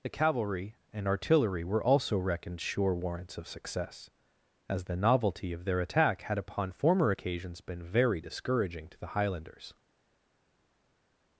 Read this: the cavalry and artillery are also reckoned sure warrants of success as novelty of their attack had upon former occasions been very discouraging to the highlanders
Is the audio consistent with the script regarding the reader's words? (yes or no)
no